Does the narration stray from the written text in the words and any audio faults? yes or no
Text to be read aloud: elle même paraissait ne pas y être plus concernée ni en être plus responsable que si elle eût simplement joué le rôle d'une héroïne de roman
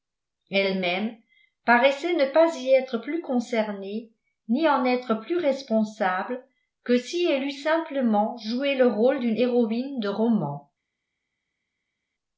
no